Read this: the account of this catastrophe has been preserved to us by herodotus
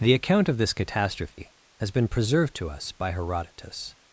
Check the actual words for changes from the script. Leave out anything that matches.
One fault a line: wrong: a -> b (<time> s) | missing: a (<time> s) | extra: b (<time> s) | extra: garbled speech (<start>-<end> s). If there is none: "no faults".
no faults